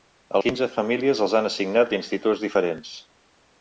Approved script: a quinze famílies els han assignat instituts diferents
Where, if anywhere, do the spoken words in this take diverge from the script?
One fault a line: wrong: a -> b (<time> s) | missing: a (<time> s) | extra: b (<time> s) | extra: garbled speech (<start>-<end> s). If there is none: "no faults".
no faults